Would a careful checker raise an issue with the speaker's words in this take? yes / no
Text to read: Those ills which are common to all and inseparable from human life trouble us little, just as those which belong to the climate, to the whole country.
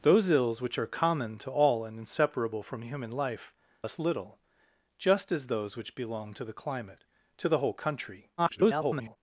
yes